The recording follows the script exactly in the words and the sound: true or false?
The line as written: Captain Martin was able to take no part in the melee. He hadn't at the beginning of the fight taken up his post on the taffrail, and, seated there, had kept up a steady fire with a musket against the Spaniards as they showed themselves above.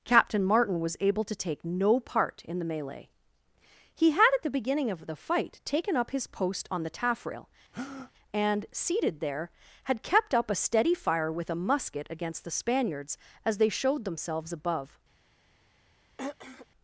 false